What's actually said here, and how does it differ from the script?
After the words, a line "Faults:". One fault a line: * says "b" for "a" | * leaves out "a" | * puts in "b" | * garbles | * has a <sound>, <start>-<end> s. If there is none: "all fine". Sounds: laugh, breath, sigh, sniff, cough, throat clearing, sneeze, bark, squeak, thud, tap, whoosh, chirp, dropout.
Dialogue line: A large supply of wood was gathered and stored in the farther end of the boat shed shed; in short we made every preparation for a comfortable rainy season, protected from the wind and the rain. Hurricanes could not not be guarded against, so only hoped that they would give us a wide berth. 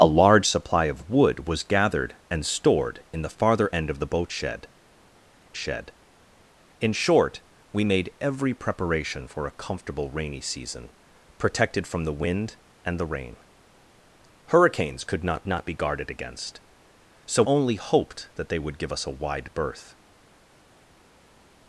A large supply of wood was gathered and stored in the farther end of the boat shed shed; in short we made every preparation for a comfortable rainy season, protected from the wind and the rain. Hurricanes could not not be guarded against, so only hoped that they would give us a wide berth.
Faults:
all fine